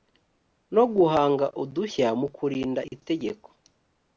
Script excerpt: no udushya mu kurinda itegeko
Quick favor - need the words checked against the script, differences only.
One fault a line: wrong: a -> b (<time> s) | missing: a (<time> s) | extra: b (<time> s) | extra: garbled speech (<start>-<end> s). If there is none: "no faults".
extra: guhanga (0.9 s)